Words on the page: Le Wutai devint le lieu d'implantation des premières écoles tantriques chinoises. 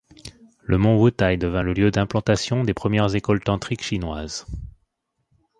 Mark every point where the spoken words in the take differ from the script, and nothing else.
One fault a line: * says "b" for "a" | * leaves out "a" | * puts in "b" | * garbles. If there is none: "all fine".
* puts in "mont"